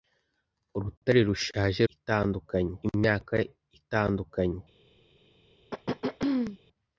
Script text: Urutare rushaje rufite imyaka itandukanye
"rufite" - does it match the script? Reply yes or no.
no